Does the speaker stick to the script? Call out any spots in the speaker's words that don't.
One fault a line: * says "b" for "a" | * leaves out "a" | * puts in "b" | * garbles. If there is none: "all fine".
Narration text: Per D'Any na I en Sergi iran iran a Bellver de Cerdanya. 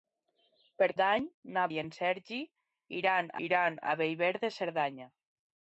all fine